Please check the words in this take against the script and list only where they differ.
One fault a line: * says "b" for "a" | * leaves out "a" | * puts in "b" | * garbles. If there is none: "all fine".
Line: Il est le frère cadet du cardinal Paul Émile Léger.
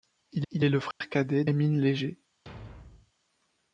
* puts in "il"
* leaves out "du cardinal Paul"